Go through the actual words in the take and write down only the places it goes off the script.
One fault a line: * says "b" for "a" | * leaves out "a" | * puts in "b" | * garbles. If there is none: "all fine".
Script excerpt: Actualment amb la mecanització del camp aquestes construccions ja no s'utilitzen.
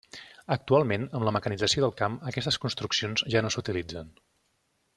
all fine